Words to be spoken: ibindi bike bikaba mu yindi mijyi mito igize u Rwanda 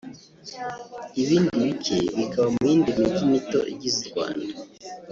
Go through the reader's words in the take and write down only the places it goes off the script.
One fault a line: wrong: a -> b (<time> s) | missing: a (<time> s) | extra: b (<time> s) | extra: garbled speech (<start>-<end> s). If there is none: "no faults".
no faults